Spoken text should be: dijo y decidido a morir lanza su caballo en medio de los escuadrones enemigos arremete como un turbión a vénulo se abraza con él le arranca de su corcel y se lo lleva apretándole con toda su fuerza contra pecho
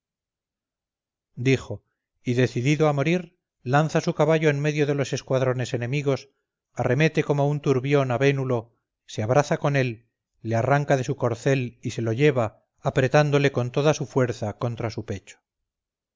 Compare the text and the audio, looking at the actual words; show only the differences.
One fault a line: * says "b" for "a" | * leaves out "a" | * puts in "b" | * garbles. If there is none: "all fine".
* puts in "su"